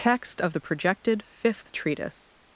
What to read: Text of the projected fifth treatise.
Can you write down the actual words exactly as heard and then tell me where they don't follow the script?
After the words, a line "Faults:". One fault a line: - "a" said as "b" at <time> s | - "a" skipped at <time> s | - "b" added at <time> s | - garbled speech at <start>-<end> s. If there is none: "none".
Text of the projected fifth treatise.
Faults:
none